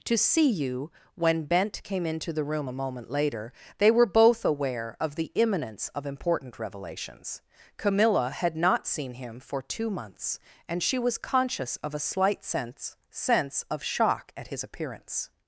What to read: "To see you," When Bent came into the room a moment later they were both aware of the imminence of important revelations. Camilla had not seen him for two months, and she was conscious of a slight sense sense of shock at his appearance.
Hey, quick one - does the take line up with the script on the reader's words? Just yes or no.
yes